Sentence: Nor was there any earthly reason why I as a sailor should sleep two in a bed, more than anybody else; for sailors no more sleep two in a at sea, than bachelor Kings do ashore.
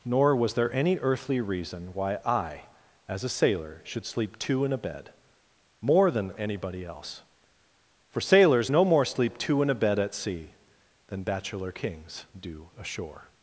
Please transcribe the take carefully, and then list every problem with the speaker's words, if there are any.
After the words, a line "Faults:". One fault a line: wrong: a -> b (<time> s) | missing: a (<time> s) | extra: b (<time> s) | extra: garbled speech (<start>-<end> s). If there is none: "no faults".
Nor was there any earthly reason why I as a sailor should sleep two in a bed, more than anybody else; for sailors no more sleep two in a bed at sea, than bachelor Kings do ashore.
Faults:
extra: bed (9.7 s)